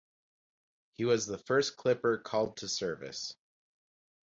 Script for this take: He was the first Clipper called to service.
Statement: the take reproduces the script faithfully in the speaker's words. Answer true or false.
true